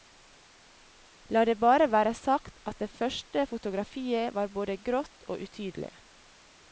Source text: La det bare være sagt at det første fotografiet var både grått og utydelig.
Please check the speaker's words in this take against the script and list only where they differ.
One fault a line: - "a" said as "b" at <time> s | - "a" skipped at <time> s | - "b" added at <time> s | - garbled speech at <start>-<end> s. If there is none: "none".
none